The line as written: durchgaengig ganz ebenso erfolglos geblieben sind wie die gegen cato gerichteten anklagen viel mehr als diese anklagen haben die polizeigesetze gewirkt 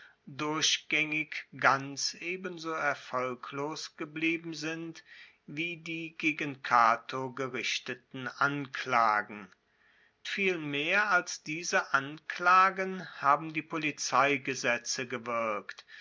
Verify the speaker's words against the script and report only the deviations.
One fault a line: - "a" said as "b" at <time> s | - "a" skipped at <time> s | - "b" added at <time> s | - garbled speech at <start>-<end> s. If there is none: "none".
none